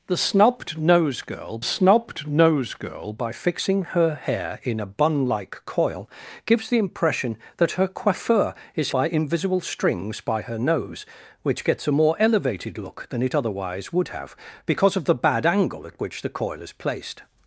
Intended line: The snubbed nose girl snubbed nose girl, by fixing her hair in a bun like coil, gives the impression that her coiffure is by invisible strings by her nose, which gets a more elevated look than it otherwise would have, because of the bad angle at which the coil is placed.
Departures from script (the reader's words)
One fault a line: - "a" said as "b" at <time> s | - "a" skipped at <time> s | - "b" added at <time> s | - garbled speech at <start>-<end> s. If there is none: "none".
none